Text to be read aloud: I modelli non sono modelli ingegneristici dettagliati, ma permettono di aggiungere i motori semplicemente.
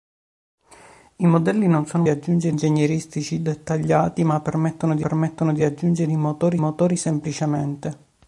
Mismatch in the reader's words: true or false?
true